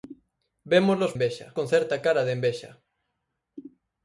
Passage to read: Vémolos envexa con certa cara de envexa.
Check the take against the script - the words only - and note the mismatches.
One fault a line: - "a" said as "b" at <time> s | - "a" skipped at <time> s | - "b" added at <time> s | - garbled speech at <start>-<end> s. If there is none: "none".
none